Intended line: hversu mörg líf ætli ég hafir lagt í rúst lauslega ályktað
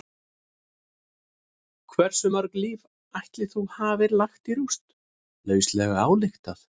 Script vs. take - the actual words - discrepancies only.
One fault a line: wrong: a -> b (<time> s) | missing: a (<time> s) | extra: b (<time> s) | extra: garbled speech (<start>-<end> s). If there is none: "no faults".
wrong: ég -> þú (3.5 s)